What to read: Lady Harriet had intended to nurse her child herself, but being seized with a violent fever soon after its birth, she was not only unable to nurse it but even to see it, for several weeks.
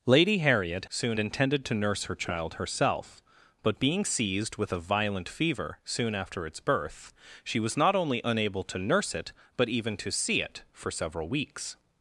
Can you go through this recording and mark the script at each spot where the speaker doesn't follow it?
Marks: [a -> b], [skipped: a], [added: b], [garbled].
Lady Harriet [had -> soon] intended to nurse her child herself, but being seized with a violent fever soon after its birth, she was not only unable to nurse it but even to see it, for several weeks.